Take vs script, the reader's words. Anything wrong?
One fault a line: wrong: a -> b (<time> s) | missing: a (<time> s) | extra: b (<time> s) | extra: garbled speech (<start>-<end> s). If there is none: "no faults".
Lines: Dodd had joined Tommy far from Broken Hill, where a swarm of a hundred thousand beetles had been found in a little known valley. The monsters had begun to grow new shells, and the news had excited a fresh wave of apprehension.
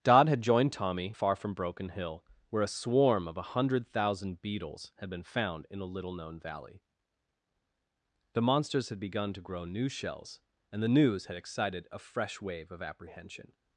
no faults